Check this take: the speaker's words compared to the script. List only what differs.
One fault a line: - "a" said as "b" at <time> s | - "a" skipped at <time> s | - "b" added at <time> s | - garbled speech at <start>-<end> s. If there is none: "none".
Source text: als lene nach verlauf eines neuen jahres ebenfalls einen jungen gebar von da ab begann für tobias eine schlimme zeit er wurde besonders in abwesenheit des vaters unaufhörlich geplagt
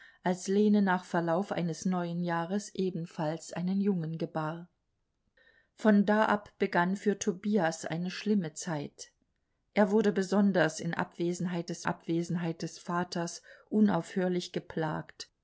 - "abwesenheit des" added at 11.8 s